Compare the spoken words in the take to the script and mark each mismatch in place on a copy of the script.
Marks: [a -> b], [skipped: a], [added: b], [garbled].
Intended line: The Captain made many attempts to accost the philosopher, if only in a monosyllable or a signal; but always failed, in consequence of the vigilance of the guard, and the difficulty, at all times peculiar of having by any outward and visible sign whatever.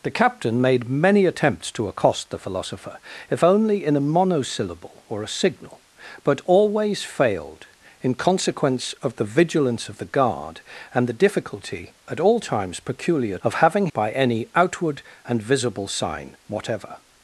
The Captain made many attempts to accost the philosopher, if only in a monosyllable or a signal; but always failed, in consequence of the vigilance of the guard, and the difficulty, at all times peculiar of having by any outward and visible sign whatever.